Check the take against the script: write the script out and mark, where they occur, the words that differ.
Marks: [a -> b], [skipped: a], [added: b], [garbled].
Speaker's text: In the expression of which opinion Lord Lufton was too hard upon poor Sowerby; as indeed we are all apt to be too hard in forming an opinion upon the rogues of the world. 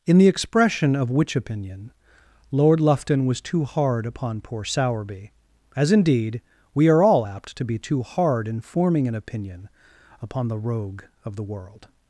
In the expression of which opinion Lord Lufton was too hard upon poor Sowerby; as indeed we are all apt to be too hard in forming an opinion upon the [rogues -> rogue] of the world.